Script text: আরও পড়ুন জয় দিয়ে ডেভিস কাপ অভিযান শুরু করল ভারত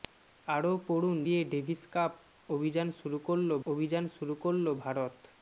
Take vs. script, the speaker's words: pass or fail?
fail